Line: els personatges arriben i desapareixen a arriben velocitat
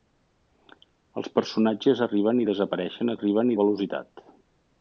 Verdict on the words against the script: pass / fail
pass